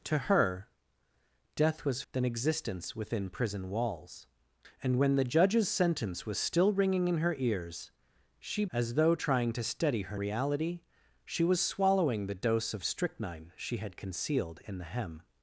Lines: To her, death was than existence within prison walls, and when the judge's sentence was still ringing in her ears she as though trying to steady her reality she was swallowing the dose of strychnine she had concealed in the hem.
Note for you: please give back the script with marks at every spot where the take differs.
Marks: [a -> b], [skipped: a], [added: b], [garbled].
To her, death was than existence within prison walls, and when the judge's sentence was still ringing in her ears she as though trying to steady her reality she was swallowing the dose of strychnine she had concealed in the hem.